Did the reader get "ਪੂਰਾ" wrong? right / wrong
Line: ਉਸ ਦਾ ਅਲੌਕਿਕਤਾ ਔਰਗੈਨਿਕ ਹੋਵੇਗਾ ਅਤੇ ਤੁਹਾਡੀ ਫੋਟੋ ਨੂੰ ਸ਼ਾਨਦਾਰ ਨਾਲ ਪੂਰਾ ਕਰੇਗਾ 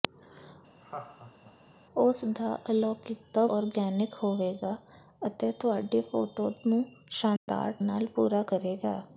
right